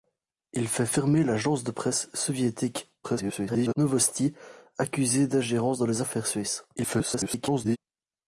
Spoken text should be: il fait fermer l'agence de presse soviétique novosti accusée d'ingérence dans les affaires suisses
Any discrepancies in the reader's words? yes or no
yes